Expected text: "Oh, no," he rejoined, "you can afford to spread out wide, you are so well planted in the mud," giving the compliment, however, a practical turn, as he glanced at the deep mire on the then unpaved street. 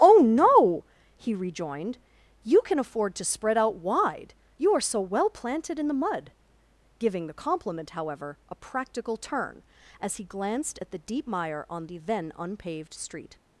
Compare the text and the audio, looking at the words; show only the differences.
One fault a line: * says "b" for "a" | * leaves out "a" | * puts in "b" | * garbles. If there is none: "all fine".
all fine